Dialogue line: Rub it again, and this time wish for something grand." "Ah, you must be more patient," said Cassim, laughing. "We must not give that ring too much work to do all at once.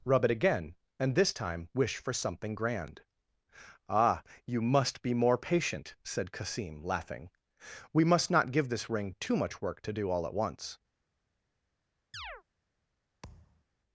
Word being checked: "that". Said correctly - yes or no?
no